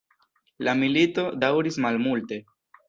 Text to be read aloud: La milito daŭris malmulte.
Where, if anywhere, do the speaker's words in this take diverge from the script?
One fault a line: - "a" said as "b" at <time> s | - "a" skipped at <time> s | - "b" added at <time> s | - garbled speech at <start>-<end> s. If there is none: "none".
none